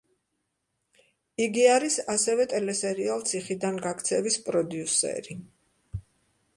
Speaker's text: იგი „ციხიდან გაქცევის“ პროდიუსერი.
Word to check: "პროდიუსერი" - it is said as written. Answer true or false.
true